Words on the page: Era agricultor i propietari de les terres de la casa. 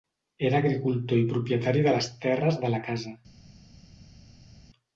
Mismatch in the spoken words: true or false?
false